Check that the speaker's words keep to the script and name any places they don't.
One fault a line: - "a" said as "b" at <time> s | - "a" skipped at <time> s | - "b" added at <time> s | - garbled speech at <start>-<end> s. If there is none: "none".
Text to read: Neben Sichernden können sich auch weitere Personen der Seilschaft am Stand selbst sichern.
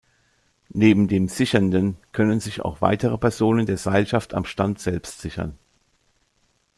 - "dem" added at 1.1 s